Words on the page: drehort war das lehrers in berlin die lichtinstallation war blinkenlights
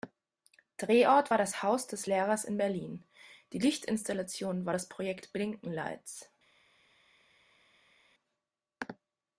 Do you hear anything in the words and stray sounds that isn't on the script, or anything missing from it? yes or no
yes